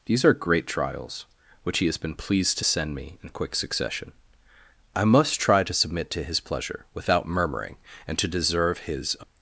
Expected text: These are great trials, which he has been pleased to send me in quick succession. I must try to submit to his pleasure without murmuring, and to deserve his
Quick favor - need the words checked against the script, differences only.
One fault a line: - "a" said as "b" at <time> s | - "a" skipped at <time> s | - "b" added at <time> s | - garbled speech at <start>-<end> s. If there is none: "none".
none